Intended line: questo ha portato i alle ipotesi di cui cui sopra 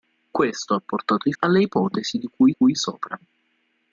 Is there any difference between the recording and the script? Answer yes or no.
no